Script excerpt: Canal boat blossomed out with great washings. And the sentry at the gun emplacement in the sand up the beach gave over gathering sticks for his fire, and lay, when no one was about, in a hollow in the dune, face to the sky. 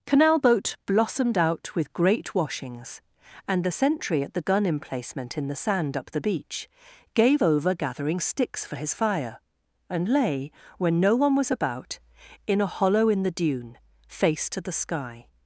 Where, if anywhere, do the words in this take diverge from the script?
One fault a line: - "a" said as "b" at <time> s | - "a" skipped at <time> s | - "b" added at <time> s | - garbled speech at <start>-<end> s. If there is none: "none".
none